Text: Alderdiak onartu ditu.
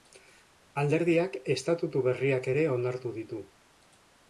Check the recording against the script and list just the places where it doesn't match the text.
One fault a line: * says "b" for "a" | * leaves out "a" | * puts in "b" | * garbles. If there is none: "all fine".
* puts in "estatutu berriak ere"